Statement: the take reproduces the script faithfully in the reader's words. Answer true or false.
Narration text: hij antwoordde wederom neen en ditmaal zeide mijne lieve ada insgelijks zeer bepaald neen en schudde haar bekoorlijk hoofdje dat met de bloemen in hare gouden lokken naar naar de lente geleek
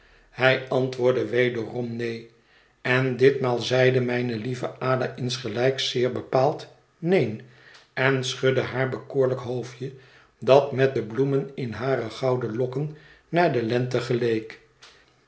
false